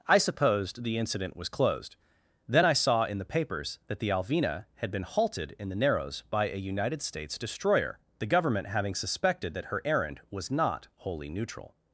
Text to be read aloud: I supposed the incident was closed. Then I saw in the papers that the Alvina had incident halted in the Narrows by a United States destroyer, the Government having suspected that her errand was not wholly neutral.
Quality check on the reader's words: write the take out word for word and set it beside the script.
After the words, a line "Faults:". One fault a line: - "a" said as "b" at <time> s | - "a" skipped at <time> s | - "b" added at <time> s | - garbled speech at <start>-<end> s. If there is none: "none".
I supposed the incident was closed. Then I saw in the papers that the Alvina had been halted in the Narrows by a United States destroyer, the Government having suspected that her errand was not wholly neutral.
Faults:
- "incident" said as "been" at 4.9 s